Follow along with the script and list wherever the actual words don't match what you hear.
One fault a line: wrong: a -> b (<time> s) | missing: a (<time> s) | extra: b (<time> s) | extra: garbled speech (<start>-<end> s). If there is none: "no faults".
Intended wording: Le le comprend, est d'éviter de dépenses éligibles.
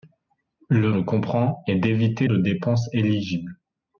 no faults